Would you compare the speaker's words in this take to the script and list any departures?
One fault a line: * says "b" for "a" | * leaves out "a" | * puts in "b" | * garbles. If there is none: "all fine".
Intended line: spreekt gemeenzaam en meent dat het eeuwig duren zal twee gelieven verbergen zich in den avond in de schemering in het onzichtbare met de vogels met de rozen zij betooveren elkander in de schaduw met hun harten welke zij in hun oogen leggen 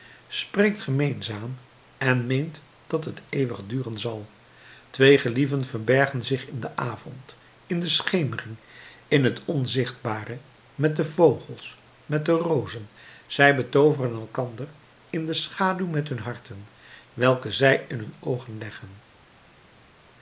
all fine